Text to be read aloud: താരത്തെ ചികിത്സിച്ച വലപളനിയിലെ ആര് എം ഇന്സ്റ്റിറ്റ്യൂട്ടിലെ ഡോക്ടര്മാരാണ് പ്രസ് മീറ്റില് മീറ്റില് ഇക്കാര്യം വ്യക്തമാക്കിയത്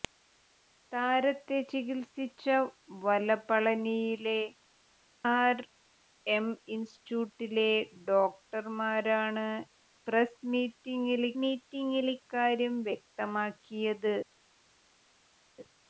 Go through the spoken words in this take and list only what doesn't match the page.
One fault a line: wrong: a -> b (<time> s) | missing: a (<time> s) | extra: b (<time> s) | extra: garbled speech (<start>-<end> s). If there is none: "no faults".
no faults